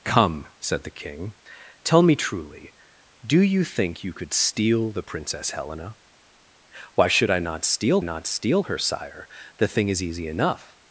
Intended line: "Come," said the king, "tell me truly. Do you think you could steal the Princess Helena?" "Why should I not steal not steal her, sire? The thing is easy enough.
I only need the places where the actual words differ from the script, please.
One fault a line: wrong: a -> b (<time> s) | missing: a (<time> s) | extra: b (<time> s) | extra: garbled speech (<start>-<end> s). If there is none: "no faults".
no faults